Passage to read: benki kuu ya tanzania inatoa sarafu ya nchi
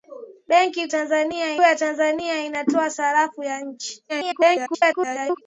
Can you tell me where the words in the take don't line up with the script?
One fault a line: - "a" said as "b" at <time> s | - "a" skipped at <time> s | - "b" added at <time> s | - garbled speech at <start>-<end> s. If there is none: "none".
- "kuu" said as "tanzania" at 0.9 s
- garbled speech at 4.1-5.4 s